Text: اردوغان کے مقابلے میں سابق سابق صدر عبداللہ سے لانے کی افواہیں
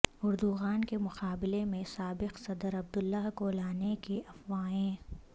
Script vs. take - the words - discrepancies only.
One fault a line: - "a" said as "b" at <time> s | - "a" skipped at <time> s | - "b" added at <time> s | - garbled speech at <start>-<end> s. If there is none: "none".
- "سابق" skipped at 2.4 s
- "سے" said as "کو" at 3.4 s